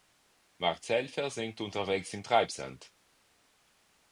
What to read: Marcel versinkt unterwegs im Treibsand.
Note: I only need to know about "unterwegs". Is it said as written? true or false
true